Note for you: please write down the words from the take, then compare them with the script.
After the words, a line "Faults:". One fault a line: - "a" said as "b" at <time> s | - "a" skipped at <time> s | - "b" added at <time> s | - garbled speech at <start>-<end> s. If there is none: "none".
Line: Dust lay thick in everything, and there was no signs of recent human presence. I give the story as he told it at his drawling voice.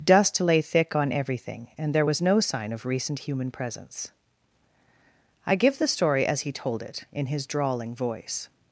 Dust lay thick on everything, and there was no sign of recent human presence. I give the story as he told it in his drawling voice.
Faults:
- "in" said as "on" at 1.0 s
- "signs" said as "sign" at 2.4 s
- "at" said as "in" at 7.1 s